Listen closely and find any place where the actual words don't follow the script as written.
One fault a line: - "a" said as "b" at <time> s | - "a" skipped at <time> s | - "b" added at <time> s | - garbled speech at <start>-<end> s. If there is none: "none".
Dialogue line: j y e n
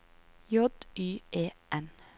none